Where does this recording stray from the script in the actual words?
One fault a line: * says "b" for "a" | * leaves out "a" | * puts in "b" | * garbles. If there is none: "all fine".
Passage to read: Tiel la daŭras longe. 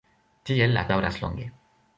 all fine